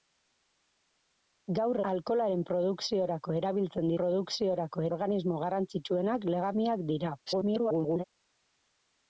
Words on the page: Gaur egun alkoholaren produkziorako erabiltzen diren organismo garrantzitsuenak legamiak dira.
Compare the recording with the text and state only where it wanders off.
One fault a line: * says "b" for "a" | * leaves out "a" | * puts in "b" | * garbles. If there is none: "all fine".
* leaves out "egun"
* says "produkziorako" for "diren"
* garbles